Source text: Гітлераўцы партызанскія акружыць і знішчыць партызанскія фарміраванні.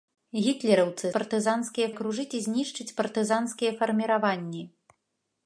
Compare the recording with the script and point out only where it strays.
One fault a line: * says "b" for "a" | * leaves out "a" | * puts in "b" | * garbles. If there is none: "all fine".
all fine